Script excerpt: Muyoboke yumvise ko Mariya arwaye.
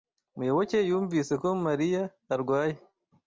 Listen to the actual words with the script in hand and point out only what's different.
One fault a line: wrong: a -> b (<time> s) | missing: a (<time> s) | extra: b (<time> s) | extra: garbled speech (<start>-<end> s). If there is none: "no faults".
no faults